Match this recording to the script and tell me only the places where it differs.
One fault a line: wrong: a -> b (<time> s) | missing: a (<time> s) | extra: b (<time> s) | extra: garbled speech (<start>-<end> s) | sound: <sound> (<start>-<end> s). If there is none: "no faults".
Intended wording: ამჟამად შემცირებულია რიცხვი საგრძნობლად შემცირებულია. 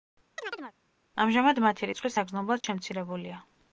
sound: chirp (0.4-0.7 s)
wrong: შემცირებულია -> მათი (1.6 s)
sound: dropout (2.6-2.6 s)